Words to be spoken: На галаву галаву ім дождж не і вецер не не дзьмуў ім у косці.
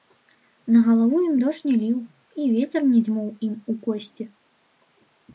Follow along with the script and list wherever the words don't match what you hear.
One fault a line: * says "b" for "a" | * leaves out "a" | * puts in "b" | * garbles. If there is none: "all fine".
* leaves out "галаву"
* puts in "ліў"
* leaves out "не"